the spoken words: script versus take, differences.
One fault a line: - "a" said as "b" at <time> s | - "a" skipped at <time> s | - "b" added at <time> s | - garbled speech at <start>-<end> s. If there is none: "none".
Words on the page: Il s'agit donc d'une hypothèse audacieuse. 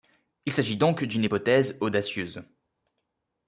none